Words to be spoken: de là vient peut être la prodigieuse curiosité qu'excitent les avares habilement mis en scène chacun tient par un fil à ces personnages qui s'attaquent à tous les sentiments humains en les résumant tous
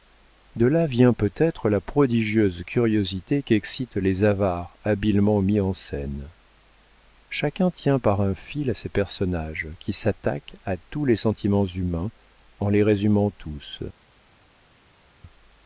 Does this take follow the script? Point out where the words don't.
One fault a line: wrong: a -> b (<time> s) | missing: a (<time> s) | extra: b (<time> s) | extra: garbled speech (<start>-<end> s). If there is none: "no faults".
no faults